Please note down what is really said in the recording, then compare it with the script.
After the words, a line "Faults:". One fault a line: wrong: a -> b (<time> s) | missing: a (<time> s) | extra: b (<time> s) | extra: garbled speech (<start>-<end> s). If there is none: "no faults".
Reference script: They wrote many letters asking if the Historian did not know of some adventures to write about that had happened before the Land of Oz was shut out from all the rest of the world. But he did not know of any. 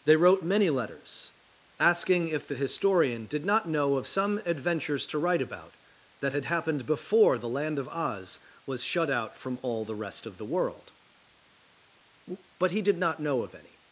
They wrote many letters asking if the Historian did not know of some adventures to write about that had happened before the Land of Oz was shut out from all the rest of the world. But he did not know of any.
Faults:
no faults